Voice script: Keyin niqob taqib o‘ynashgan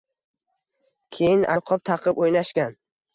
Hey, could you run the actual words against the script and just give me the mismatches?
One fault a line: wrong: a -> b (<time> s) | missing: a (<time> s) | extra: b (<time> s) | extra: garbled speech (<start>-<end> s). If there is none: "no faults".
no faults